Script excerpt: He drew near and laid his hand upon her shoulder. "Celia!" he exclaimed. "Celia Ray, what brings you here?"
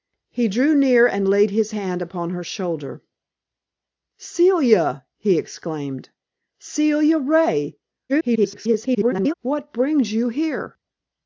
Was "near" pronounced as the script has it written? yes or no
yes